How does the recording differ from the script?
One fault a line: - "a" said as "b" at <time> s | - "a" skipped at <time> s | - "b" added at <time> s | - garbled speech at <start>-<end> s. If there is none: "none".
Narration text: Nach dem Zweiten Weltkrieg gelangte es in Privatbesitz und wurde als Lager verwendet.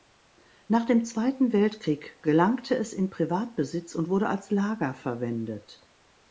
none